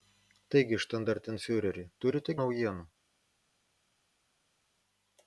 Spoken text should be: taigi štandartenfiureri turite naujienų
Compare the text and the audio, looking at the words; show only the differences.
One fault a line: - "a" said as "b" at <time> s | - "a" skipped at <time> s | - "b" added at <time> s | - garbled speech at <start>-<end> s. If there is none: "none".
none